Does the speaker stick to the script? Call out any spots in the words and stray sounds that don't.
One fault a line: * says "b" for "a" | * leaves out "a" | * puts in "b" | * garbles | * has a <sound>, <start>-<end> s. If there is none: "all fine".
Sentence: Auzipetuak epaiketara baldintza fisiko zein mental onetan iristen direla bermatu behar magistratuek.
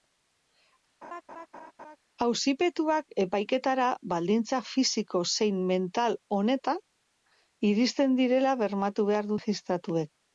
* has a laugh, 1.0-2.0 s